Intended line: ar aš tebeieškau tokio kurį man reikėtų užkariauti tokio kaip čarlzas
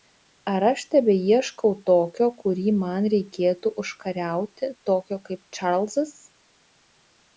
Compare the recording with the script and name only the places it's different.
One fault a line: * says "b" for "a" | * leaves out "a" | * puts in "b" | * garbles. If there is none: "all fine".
all fine